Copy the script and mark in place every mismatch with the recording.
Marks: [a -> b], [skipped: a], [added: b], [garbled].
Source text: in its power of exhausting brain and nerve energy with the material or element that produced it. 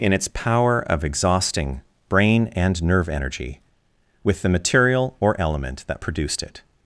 in its power of exhausting brain and nerve energy with the material or element that produced it.